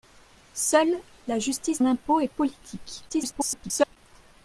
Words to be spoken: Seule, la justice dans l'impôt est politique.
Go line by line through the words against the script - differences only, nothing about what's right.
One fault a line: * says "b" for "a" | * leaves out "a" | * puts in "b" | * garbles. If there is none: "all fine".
* leaves out "dans"
* garbles